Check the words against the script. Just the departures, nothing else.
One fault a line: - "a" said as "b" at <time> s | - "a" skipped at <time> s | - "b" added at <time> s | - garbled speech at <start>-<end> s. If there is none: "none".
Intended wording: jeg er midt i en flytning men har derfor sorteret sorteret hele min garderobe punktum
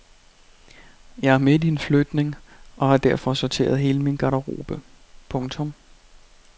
- "men" said as "og" at 2.8 s
- "sorteret" skipped at 3.8 s